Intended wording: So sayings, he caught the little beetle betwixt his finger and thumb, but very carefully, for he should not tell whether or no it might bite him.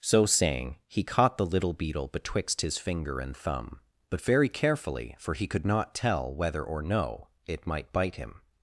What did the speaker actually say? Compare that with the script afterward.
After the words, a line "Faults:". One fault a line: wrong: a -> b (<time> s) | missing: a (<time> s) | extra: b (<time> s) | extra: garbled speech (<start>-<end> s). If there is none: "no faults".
So saying, he caught the little beetle betwixt his finger and thumb, but very carefully, for he could not tell whether or no it might bite him.
Faults:
wrong: sayings -> saying (0.2 s)
wrong: should -> could (5.5 s)